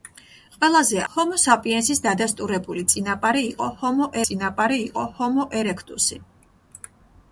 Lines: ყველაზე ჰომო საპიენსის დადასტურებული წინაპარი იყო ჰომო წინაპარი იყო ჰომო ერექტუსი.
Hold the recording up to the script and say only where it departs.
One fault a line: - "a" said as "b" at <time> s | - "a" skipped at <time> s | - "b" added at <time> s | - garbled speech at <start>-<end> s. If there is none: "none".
none